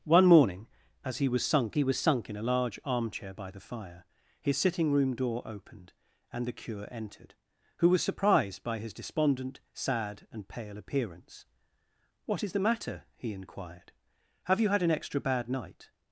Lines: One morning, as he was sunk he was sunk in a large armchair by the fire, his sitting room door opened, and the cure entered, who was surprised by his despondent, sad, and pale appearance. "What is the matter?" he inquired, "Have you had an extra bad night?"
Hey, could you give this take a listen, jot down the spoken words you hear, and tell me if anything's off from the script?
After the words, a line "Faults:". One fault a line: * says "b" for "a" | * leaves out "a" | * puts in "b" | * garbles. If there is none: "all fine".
One morning, as he was sunk he was sunk in a large armchair by the fire, his sitting room door opened, and the cure entered, who was surprised by his despondent, sad, and pale appearance. "What is the matter?" he inquired, "Have you had an extra bad night?"
Faults:
all fine